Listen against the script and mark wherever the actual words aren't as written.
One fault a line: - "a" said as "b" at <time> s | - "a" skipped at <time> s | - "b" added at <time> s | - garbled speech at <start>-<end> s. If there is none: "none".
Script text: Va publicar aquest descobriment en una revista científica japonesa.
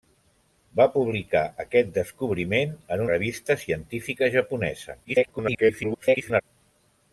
- "una" skipped at 3.0 s
- garbled speech at 5.0-6.4 s